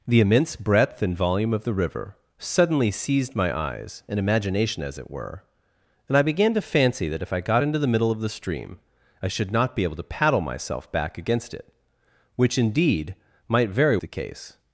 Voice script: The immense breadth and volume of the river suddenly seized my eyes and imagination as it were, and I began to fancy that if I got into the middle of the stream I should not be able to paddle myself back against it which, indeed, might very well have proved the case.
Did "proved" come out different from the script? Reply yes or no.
yes